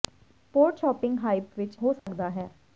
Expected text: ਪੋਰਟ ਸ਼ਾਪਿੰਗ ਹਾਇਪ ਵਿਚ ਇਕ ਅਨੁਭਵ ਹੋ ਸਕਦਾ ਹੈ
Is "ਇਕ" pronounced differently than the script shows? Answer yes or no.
yes